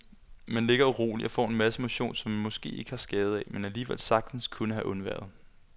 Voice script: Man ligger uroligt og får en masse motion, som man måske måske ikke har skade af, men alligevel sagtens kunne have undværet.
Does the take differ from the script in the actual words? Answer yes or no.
yes